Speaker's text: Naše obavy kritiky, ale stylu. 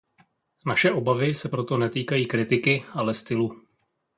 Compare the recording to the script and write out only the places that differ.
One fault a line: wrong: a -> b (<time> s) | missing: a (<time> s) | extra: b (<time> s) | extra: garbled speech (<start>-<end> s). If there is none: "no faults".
extra: se proto netýkají (1.4 s)